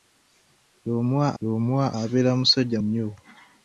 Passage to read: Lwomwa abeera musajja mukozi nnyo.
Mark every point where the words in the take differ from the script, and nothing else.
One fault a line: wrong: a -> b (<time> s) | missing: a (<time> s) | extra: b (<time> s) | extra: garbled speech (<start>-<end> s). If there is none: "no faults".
extra: lwomwa (1.4 s)
missing: mukozi (2.8 s)